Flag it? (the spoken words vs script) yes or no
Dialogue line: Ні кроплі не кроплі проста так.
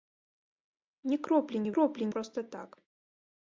no